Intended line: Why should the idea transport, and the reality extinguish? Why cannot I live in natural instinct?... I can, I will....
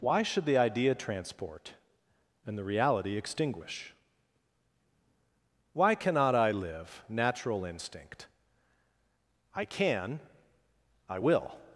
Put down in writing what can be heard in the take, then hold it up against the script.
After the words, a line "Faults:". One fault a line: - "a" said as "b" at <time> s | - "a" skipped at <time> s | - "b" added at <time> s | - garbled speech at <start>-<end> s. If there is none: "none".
Why should the idea transport, and the reality extinguish? Why cannot I live natural instinct?... I can, I will....
Faults:
- "in" skipped at 7.0 s